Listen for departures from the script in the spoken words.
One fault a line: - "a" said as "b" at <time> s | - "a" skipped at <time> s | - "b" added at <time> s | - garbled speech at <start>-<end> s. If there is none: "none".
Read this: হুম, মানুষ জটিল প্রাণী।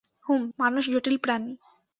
none